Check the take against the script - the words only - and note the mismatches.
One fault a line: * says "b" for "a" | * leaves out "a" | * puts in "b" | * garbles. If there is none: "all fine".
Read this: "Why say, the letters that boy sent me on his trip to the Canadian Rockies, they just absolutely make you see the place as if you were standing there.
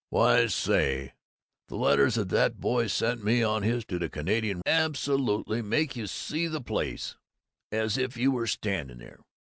* leaves out "trip"
* leaves out "Rockies they just"